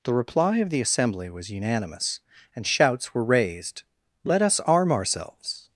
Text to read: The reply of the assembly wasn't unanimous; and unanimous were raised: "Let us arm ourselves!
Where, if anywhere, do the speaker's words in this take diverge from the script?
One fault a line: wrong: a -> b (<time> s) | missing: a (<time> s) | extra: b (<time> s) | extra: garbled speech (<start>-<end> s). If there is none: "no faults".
wrong: wasn't -> was (1.3 s)
wrong: unanimous -> shouts (2.6 s)